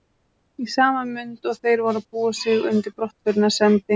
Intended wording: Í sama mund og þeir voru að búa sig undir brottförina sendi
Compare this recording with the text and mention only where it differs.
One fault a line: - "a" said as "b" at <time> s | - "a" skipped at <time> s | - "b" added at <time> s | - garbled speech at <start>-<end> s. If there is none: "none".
none